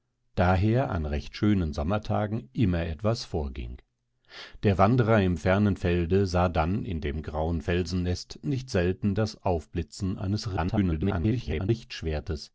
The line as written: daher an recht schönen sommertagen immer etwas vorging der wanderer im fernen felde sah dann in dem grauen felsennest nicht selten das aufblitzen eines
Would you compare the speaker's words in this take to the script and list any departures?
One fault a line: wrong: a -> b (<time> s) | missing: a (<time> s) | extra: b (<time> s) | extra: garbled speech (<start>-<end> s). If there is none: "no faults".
extra: garbled speech (10.6-11.7 s)